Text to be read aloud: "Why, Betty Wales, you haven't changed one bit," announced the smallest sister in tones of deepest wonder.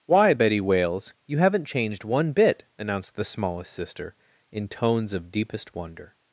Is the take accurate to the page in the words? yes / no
yes